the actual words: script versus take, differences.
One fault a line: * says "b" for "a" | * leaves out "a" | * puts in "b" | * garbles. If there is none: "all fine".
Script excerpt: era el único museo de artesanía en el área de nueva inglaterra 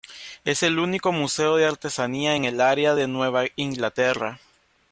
* says "es" for "era"